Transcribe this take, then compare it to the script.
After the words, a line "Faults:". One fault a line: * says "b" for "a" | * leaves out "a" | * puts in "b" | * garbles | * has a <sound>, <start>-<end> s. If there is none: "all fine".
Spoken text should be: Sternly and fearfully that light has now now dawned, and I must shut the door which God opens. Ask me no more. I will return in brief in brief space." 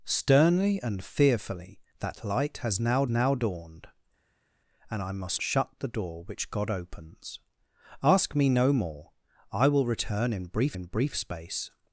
Sternly and fearfully that light has now now dawned, and I must shut the door which God opens. Ask me no more. I will return in brief in brief space."
Faults:
all fine